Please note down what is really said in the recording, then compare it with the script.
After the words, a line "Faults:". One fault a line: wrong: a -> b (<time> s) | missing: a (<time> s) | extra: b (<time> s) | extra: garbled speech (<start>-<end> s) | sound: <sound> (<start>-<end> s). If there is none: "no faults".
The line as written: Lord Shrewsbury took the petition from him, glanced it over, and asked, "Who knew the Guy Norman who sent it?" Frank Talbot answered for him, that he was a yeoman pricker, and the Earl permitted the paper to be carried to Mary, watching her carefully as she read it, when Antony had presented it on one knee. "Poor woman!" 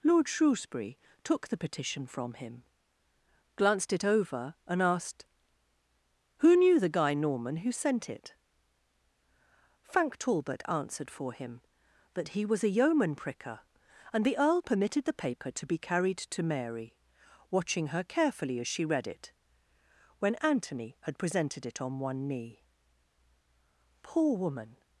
Lord Shrewsbury took the petition from him, glanced it over, and asked, "Who knew the Guy Norman who sent it?" Frank Talbot answered for him, that he was a yeoman pricker, and the Earl permitted the paper to be carried to Mary, watching her carefully as she read it, when Antony had presented it on one knee. "Poor woman!"
Faults:
no faults